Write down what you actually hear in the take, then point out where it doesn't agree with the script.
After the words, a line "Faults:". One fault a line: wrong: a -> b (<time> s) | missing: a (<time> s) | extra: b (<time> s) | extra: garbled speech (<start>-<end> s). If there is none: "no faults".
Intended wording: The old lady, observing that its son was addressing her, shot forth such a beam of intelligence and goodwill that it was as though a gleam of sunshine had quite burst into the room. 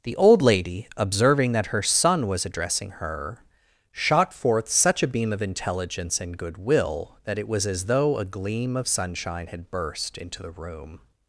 The old lady, observing that her son was addressing her, shot forth such a beam of intelligence and goodwill that it was as though a gleam of sunshine had burst into the room.
Faults:
wrong: its -> her (1.7 s)
missing: quite (9.7 s)